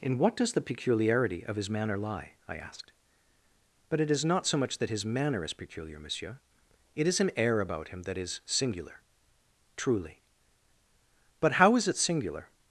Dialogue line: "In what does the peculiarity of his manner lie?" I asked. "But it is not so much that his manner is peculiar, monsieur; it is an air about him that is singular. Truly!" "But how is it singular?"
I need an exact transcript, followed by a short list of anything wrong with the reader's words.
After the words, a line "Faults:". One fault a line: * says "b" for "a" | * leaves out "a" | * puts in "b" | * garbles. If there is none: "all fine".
"In what does the peculiarity of his manner lie?" I asked. "But it is not so much that his manner is peculiar, monsieur; it is an air about him that is singular. Truly!" "But how is it singular?"
Faults:
all fine